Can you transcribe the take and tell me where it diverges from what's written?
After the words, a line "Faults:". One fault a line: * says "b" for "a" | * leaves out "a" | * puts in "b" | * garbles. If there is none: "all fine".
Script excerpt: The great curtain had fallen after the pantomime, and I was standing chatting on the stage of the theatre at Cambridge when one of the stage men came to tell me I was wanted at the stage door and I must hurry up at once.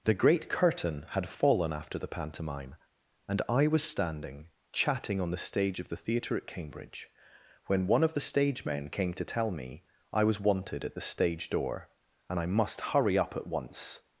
The great curtain had fallen after the pantomime, and I was standing chatting on the stage of the theatre at Cambridge when one of the stage men came to tell me I was wanted at the stage door and I must hurry up at once.
Faults:
all fine